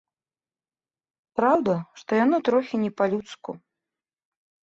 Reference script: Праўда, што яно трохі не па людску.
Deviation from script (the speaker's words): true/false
false